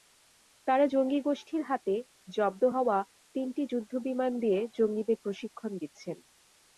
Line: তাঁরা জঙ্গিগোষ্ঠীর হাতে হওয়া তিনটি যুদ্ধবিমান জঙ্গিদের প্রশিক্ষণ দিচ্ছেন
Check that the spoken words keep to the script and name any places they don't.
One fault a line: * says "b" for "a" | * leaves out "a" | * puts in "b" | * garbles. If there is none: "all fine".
* puts in "জব্দ"
* puts in "দিয়ে"